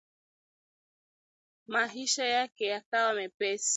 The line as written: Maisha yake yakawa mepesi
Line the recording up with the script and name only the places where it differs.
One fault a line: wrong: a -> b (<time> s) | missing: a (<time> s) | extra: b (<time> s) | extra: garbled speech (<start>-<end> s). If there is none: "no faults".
no faults